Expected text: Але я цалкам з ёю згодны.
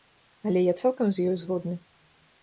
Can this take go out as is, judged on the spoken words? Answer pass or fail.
pass